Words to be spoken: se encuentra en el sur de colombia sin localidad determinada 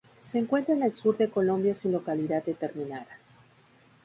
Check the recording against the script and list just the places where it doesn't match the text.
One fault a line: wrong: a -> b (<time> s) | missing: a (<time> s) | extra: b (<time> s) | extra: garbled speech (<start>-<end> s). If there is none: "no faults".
no faults